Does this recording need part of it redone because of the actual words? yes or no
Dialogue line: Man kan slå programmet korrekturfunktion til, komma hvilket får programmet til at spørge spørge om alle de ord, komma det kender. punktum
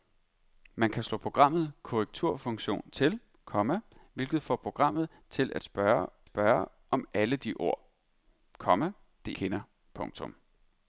no